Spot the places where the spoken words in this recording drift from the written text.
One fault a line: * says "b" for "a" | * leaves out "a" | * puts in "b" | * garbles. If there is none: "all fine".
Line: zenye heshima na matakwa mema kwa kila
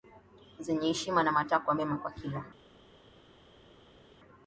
all fine